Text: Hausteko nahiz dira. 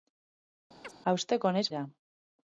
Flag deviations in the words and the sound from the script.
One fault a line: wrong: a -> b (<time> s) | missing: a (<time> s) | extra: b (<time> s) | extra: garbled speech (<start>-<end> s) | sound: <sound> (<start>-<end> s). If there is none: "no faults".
sound: chirp (0.8-0.9 s)